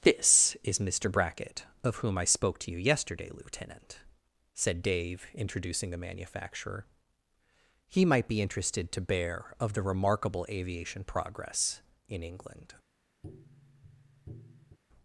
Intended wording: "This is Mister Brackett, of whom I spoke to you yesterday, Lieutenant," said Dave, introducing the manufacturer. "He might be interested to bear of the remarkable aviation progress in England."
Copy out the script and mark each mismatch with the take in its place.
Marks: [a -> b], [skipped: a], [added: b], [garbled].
"This is Mister Brackett, of whom I spoke to you yesterday, Lieutenant," said Dave, introducing the manufacturer. "He might be interested to bear of the remarkable aviation progress in England."